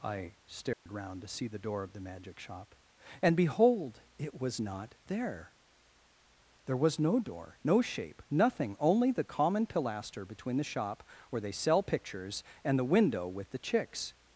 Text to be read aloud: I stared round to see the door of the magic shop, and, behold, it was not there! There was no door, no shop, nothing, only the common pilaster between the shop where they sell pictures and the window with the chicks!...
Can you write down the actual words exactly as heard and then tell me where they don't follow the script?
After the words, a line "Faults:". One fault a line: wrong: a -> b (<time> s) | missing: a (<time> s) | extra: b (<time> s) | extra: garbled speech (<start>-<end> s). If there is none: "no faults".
I stared round to see the door of the magic shop, and, behold, it was not there! There was no door, no shape, nothing, only the common pilaster between the shop where they sell pictures and the window with the chicks!...
Faults:
wrong: shop -> shape (7.8 s)